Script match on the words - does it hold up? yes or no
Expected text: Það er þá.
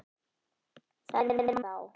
yes